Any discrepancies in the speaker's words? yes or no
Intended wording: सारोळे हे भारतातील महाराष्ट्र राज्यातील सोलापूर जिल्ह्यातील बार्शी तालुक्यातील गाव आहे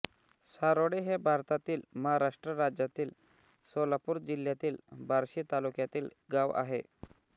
no